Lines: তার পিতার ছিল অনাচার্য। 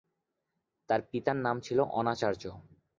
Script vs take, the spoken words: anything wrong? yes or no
yes